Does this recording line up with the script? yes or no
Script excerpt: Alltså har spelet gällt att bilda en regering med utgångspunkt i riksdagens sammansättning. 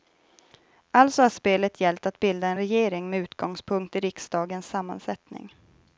yes